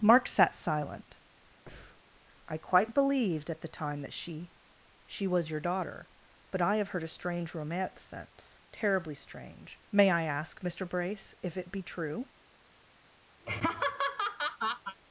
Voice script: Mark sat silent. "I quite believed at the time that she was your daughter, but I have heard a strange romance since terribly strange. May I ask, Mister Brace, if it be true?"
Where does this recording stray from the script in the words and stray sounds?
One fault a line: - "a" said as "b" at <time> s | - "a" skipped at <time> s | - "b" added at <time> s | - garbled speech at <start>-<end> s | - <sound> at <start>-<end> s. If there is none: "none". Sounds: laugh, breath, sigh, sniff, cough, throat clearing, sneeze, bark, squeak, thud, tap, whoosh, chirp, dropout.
- breath at 1.7-2.0 s
- "she" added at 5.1 s
- laugh at 13.4-15.0 s